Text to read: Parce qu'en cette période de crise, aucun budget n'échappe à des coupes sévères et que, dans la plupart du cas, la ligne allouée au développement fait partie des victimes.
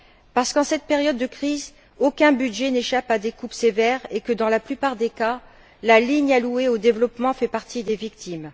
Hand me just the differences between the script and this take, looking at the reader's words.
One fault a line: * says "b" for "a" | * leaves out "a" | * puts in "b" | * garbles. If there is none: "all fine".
* says "des" for "du"